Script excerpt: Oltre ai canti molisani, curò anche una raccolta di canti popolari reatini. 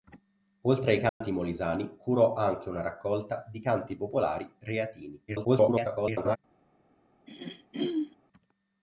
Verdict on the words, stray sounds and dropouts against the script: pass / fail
fail